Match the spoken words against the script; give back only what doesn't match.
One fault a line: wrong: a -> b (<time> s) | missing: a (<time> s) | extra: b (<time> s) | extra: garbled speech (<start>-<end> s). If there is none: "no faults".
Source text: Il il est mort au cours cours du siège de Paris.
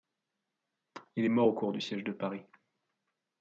missing: il (1.2 s)
missing: cours (1.7 s)